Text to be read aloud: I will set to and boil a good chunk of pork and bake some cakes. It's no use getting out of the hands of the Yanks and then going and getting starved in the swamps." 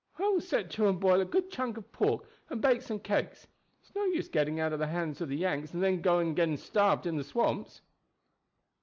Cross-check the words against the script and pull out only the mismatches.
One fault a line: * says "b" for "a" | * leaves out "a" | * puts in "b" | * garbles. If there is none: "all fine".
all fine